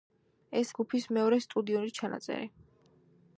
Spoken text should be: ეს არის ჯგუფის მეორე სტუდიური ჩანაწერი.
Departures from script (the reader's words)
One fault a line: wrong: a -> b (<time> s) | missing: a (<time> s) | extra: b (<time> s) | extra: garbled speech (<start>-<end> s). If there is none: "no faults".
missing: არის (0.7 s)